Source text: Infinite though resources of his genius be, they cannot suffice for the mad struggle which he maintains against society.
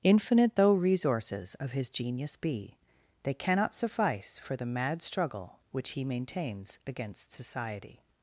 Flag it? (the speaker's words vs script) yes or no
no